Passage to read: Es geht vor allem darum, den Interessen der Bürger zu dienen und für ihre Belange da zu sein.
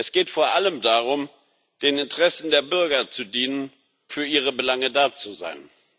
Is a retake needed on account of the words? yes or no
yes